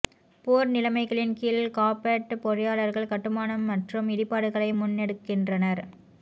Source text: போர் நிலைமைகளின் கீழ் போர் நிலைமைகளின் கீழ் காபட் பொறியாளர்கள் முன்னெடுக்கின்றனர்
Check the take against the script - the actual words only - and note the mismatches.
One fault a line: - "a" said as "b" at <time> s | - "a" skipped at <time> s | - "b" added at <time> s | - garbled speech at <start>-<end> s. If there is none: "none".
- "போர் நிலைமைகளின் கீழ் காபட் பொறியாளர்கள்" said as "காபட் பொறியாளர்கள் கட்டுமானம் மற்றும் இடிபாடுகளை" at 1.8 s